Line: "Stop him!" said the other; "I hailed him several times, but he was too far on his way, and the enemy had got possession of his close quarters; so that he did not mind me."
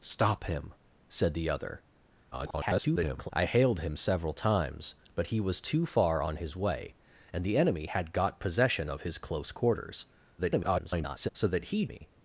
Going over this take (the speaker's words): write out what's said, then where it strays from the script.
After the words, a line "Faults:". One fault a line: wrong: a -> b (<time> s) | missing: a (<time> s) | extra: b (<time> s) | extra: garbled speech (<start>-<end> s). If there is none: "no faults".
"Stop him!" said the other; [garbled] "I hailed him several times, but he was too far on his way, and the enemy had got possession of his close quarters; [garbled] so that he me."
Faults:
extra: garbled speech (2.3-3.3 s)
extra: garbled speech (10.4-11.3 s)
missing: did not mind (11.9 s)